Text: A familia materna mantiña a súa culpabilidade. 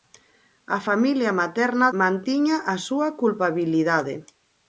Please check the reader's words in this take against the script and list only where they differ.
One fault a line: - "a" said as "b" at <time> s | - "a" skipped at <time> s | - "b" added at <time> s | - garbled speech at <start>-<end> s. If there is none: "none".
none